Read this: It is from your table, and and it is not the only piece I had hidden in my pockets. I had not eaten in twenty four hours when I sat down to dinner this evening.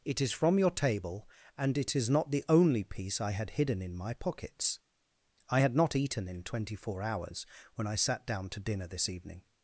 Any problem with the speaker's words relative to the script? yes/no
yes